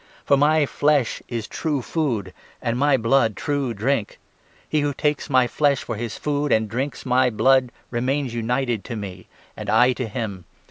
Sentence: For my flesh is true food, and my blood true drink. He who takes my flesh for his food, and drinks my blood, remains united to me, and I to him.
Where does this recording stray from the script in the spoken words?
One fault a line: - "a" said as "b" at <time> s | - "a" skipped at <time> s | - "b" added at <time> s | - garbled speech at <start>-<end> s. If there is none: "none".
none